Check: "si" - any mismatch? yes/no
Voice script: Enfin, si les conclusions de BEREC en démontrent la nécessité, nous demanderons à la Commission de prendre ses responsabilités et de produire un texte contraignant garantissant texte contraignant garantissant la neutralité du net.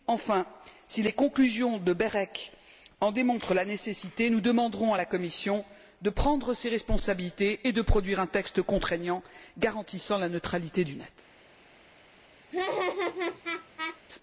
no